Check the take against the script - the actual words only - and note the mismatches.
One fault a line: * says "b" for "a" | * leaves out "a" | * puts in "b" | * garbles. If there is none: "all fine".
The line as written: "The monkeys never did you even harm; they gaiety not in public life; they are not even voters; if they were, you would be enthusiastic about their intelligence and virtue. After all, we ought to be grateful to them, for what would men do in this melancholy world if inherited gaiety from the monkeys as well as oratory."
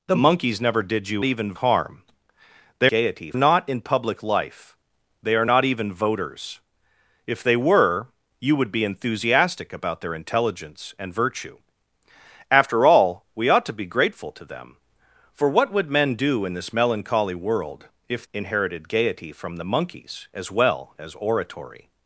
all fine